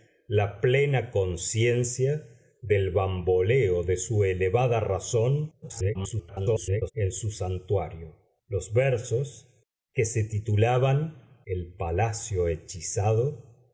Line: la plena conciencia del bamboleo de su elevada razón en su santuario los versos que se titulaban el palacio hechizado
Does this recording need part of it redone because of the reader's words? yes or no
yes